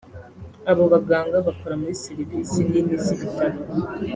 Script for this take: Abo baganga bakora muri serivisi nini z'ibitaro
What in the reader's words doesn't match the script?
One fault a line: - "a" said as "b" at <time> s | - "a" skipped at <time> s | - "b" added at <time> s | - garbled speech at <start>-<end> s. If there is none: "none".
none